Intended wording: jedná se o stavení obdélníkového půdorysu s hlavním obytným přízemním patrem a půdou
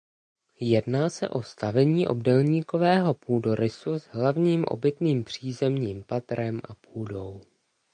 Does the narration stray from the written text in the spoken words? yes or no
no